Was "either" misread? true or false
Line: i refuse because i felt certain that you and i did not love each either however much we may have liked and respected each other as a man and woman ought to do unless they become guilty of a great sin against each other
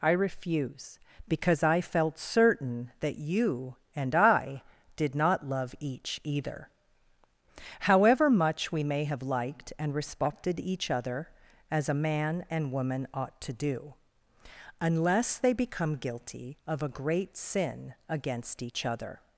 false